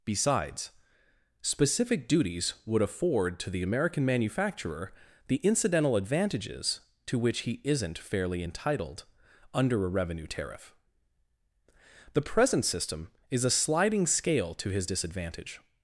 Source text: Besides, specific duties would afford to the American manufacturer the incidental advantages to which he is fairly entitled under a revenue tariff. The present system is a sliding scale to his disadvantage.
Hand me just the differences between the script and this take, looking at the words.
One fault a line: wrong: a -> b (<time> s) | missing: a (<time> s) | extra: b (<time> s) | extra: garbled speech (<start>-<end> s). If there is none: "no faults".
wrong: is -> isn't (7.6 s)